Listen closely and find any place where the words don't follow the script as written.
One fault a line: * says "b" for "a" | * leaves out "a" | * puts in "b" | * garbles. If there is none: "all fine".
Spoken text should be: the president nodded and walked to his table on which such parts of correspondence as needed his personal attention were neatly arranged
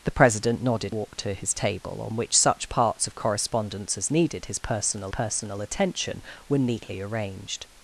* leaves out "and"
* puts in "personal"